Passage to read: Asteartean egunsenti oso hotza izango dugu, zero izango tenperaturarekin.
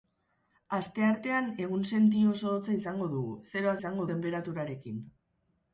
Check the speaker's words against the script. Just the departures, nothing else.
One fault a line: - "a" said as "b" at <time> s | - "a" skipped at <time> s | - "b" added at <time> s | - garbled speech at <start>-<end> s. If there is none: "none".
none